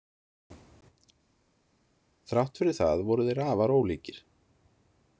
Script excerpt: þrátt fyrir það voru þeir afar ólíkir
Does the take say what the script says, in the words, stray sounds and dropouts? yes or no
yes